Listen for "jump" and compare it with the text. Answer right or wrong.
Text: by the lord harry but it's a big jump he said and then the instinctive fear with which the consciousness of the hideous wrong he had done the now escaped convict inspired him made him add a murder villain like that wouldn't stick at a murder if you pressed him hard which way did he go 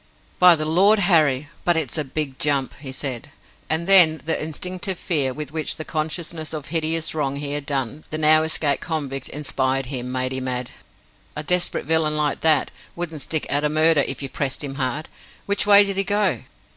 right